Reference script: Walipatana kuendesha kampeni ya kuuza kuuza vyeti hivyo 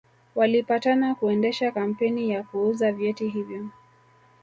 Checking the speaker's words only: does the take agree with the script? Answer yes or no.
no